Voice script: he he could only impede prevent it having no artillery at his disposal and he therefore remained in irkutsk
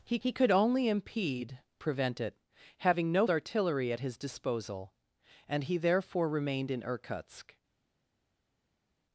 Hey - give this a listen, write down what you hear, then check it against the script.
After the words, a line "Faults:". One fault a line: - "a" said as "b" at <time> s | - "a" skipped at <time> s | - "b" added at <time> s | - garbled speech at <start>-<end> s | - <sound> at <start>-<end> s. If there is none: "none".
he he could only impede prevent it having no artillery at his disposal and he therefore remained in irkutsk
Faults:
none